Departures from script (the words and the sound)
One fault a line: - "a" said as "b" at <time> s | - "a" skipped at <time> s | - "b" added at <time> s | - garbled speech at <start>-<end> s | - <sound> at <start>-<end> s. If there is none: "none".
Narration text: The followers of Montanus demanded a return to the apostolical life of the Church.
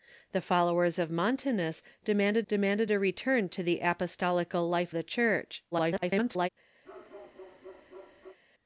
- "demanded" added at 2.5 s
- "of" skipped at 4.9 s
- garbled speech at 5.7-6.5 s
- bark at 6.8-8.4 s